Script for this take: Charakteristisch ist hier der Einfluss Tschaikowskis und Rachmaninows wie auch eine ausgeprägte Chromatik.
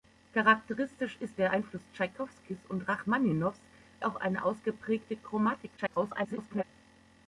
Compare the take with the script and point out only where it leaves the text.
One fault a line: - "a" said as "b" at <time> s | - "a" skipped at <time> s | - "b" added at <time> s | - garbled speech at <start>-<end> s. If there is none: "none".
- "hier" skipped at 1.4 s
- "wie" skipped at 3.6 s
- garbled speech at 5.8-6.6 s